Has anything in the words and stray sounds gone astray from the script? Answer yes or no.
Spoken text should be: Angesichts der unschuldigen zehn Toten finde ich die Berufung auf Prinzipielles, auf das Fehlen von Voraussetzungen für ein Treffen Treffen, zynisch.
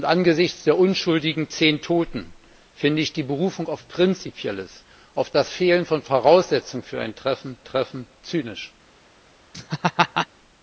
yes